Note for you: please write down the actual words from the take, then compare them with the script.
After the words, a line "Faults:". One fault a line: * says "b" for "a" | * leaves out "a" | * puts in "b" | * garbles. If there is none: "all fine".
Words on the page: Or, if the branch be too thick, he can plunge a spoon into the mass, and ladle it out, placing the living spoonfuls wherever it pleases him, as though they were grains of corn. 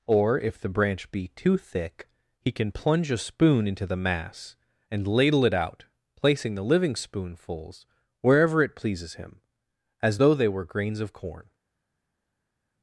Or, if the branch be too thick, he can plunge a spoon into the mass, and ladle it out, placing the living spoonfuls wherever it pleases him, as though they were grains of corn.
Faults:
all fine